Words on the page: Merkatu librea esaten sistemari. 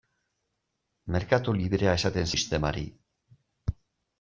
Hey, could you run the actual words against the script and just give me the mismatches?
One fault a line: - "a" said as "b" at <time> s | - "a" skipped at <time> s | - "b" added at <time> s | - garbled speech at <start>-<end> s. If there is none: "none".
none